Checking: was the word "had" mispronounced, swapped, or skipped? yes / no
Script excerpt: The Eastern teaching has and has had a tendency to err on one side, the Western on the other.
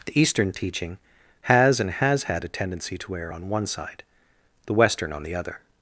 no